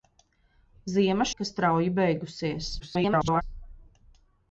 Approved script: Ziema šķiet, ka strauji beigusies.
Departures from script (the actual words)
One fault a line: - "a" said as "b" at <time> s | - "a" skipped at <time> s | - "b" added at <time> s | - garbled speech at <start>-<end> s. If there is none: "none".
- "šķiet" skipped at 1.3 s
- garbled speech at 2.8-3.4 s